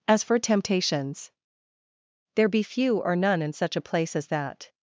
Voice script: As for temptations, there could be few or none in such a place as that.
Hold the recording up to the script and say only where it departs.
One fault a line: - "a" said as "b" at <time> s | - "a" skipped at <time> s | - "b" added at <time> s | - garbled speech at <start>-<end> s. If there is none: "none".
- "could" skipped at 2.5 s